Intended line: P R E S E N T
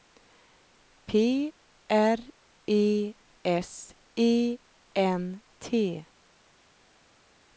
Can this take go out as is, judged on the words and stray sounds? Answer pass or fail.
pass